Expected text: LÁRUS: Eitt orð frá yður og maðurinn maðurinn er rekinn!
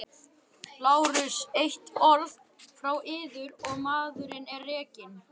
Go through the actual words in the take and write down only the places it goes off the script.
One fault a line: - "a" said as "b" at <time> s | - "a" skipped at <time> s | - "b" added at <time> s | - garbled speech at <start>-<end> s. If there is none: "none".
- "maðurinn" skipped at 4.5 s